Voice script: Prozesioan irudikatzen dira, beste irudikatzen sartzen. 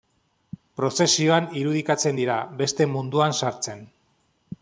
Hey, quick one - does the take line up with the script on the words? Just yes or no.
no